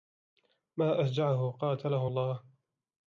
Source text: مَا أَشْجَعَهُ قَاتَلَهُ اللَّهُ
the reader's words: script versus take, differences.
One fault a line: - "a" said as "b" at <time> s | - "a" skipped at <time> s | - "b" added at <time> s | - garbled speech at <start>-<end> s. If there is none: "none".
none